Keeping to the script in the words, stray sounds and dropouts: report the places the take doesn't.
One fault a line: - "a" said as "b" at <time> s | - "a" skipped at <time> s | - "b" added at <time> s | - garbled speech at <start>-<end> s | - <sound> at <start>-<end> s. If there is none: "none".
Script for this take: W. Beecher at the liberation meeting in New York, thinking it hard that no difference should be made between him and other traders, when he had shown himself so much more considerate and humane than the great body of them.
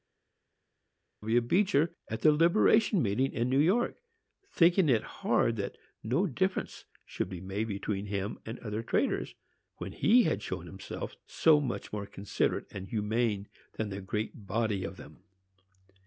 none